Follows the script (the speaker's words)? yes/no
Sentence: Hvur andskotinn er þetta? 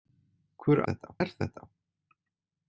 no